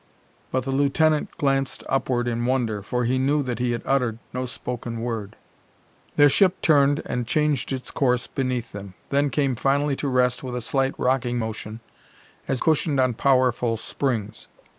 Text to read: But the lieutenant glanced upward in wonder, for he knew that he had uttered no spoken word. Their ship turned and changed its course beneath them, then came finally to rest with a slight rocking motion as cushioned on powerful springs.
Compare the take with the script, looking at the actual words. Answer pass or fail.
pass